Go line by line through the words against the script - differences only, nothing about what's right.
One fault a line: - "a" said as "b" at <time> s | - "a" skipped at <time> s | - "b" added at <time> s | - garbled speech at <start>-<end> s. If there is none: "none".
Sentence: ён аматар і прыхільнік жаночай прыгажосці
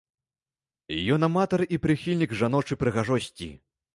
none